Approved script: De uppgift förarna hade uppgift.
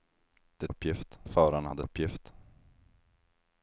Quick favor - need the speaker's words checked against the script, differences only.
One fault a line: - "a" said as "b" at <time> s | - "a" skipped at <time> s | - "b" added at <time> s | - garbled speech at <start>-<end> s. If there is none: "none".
none